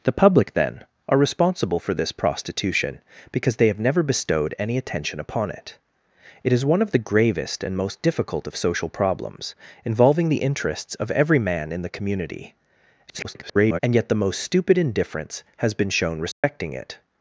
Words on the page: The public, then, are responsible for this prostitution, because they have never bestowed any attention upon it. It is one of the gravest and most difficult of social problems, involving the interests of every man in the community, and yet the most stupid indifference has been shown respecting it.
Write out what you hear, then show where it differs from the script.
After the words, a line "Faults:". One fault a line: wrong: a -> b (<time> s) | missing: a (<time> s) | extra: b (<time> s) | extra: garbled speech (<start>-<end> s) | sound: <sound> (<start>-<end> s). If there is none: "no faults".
The public, then, are responsible for this prostitution, because they have never bestowed any attention upon it. It is one of the gravest and most difficult of social problems, involving the interests of every man in the community, [garbled] and yet the most stupid indifference has been shown respecting it.
Faults:
extra: garbled speech (13.1-13.8 s)
sound: dropout (16.3-16.4 s)